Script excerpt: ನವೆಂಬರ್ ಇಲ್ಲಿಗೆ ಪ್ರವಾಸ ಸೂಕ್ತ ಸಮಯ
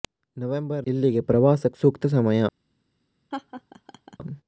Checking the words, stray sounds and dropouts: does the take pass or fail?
fail